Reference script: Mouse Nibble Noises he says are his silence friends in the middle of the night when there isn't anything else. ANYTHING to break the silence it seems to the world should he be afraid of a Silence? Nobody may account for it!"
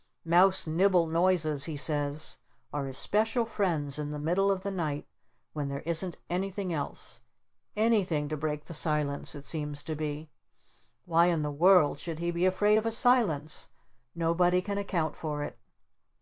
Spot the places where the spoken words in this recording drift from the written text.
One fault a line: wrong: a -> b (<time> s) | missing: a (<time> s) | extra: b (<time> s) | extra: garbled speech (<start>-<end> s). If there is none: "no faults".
wrong: silence -> special (2.9 s)
extra: be Why in (10.0 s)
wrong: may -> can (14.6 s)